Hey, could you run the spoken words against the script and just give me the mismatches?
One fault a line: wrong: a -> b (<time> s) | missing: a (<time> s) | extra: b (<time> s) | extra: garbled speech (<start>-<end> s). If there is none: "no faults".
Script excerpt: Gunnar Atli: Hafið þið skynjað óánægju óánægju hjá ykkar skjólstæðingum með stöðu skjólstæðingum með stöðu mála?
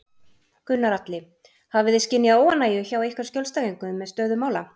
missing: óánægju (2.8 s)
missing: skjólstæðingum með stöðu (4.4 s)